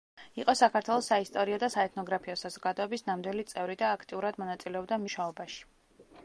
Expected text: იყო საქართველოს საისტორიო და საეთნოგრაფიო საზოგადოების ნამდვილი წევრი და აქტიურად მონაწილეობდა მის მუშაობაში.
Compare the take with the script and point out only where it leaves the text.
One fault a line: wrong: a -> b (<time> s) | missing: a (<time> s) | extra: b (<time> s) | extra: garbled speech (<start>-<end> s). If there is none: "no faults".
missing: მის (5.0 s)